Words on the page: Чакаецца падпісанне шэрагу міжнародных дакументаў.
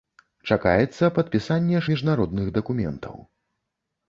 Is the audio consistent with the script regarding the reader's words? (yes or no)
no